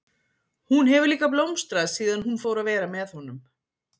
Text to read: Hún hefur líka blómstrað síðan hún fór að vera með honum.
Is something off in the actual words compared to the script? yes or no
no